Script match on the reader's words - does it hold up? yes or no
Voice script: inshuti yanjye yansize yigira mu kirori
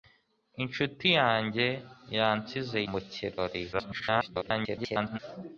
no